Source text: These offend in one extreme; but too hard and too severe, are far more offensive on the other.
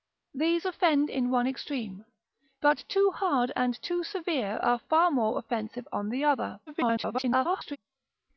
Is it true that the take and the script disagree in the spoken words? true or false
true